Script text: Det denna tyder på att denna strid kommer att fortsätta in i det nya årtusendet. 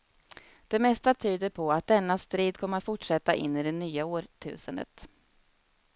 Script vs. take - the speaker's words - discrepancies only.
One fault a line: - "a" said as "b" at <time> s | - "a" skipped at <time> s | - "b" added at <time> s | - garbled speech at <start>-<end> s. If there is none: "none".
- "denna" said as "mesta" at 0.8 s